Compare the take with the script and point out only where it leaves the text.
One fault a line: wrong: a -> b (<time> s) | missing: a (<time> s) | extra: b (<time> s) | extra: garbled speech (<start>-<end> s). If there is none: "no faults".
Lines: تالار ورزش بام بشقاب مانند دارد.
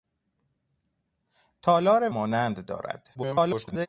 missing: ورزش بام بشقاب (2.1 s)
extra: garbled speech (3.1-3.9 s)